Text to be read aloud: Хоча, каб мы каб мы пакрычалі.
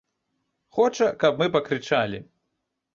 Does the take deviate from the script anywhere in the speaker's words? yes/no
yes